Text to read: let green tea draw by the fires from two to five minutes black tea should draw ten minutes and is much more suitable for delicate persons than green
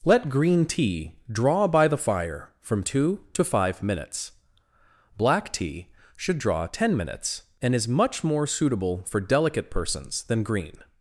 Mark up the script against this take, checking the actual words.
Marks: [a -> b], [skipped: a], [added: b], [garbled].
let green tea draw by the [fires -> fire] from two to five minutes black tea should draw ten minutes and is much more suitable for delicate persons than green